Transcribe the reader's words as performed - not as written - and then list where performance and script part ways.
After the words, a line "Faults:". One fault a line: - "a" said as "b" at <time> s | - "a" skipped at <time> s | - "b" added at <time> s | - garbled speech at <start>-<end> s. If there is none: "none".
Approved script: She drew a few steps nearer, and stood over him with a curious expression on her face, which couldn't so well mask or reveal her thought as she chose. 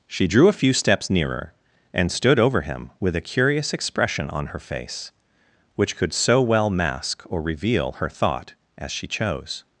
She drew a few steps nearer, and stood over him with a curious expression on her face, which could so well mask or reveal her thought as she chose.
Faults:
- "couldn't" said as "could" at 6.0 s